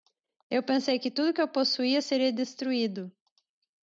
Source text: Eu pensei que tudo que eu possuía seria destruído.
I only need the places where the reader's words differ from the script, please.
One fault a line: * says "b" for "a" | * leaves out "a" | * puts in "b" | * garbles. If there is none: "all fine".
all fine